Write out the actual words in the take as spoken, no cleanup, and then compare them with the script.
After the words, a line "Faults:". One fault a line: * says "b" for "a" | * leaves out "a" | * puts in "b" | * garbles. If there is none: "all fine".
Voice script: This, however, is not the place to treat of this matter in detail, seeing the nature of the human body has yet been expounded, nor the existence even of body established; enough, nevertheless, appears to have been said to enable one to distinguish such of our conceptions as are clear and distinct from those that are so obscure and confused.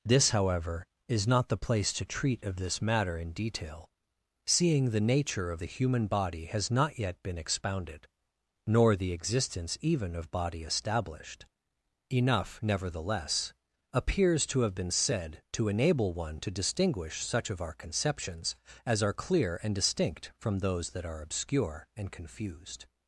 This, however, is not the place to treat of this matter in detail, seeing the nature of the human body has not yet been expounded, nor the existence even of body established; enough, nevertheless, appears to have been said to enable one to distinguish such of our conceptions as are clear and distinct from those that are obscure and confused.
Faults:
* puts in "not"
* leaves out "so"